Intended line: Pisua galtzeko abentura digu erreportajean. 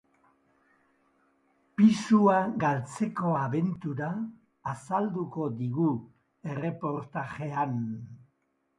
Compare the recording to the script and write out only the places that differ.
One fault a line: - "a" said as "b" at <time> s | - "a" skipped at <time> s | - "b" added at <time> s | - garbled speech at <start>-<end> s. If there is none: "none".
- "azalduko" added at 4.7 s